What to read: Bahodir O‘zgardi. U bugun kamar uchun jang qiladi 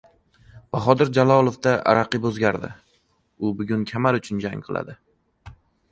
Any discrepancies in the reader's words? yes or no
yes